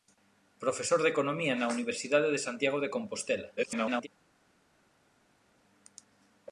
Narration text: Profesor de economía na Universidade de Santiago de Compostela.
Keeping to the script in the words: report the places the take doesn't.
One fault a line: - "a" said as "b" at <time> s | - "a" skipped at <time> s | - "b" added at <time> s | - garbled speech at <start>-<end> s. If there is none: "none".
- garbled speech at 3.6-4.1 s